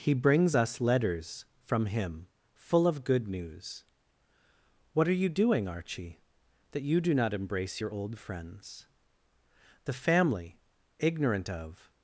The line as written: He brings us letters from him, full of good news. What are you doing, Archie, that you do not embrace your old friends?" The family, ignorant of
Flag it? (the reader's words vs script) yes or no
no